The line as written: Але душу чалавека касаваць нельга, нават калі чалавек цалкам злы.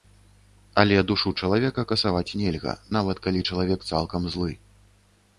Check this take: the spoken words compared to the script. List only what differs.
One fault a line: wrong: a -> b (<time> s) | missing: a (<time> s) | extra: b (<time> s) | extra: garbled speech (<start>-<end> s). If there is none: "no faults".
no faults